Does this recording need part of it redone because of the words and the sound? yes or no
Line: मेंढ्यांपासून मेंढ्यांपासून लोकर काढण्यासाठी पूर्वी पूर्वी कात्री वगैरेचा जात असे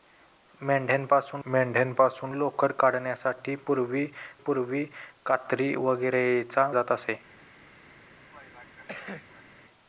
yes